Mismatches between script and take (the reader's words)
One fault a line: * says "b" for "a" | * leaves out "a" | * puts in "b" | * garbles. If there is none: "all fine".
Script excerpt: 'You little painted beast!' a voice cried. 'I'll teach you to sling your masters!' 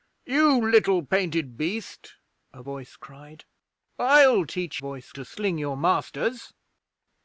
* says "voice" for "you"